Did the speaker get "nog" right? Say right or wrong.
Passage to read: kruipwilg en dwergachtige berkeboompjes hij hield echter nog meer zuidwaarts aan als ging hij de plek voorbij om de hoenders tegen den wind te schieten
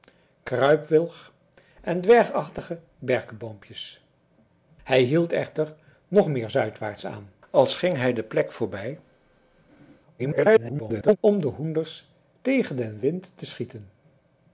right